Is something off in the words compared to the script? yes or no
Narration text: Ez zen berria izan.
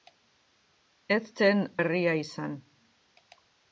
no